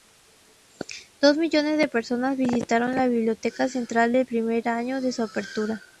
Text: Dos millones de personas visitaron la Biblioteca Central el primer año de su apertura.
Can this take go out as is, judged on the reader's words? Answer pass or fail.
pass